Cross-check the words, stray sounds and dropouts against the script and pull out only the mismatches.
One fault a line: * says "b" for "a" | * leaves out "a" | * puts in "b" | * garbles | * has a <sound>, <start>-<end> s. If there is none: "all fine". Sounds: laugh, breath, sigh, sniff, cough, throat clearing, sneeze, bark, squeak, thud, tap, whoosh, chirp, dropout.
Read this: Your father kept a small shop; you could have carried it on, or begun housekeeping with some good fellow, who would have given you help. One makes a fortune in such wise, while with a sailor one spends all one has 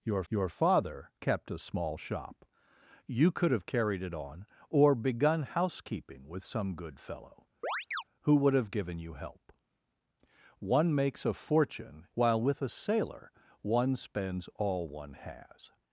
* puts in "your"
* has a chirp, 7.6-8.0 s
* leaves out "in such wise"